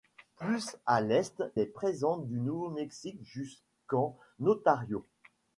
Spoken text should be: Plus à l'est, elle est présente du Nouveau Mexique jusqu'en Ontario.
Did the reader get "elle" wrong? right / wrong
wrong